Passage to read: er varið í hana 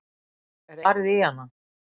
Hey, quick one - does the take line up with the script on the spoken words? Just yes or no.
yes